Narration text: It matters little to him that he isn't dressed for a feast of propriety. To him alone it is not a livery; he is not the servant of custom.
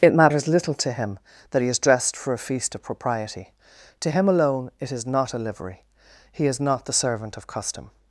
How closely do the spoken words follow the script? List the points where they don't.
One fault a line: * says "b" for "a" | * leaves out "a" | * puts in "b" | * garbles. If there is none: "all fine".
* says "is" for "isn't"